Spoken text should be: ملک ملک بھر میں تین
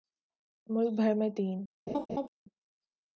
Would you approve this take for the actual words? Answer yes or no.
no